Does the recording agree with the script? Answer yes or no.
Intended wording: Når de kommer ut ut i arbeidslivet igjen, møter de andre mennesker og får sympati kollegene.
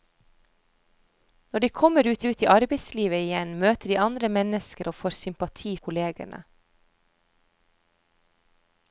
yes